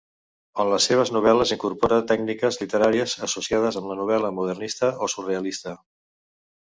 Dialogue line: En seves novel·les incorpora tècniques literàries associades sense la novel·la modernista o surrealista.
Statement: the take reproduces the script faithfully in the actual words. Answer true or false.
false